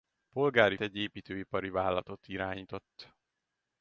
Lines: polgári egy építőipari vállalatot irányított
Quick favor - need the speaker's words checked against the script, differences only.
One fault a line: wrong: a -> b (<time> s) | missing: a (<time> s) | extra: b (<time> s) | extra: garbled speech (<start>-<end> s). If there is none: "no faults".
no faults